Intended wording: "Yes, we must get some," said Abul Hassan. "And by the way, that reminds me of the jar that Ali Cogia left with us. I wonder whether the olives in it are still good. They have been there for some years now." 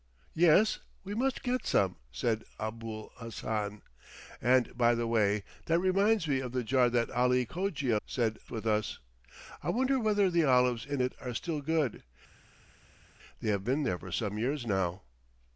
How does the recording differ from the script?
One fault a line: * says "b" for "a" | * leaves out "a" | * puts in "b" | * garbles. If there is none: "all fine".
* says "said" for "left"